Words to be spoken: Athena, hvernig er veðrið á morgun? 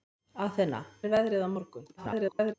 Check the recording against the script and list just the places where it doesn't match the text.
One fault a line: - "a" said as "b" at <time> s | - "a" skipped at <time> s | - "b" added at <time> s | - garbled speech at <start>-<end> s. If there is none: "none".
- "hvernig" skipped at 0.8 s
- garbled speech at 2.0-2.5 s